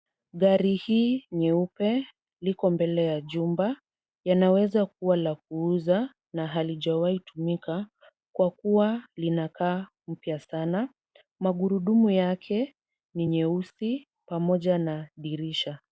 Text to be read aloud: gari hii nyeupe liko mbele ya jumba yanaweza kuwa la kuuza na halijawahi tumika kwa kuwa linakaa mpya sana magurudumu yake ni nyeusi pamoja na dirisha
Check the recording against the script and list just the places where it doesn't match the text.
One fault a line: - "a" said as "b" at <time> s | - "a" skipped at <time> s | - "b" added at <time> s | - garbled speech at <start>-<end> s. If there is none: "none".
none